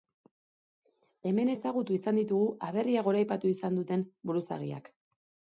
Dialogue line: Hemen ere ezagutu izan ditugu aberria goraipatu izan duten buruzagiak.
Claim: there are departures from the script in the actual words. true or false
true